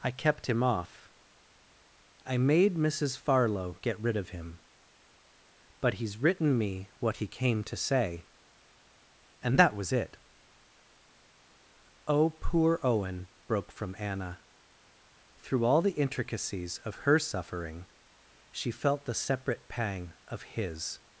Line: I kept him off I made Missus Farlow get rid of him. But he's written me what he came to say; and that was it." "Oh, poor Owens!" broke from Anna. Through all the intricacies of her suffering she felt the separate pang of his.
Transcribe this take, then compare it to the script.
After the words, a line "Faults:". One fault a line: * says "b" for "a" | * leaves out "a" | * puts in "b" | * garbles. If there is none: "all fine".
I kept him off I made Missus Farlow get rid of him. But he's written me what he came to say; and that was it." "Oh, poor Owen!" broke from Anna. Through all the intricacies of her suffering she felt the separate pang of his.
Faults:
* says "Owen" for "Owens"